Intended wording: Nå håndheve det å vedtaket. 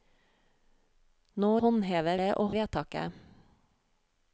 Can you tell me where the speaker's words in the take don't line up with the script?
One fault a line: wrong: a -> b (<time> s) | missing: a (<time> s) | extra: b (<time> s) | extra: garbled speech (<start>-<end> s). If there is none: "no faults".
no faults